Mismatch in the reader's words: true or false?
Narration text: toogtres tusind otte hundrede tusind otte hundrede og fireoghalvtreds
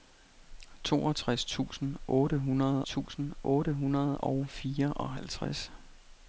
false